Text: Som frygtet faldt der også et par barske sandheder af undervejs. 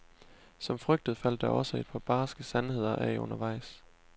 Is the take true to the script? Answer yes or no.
yes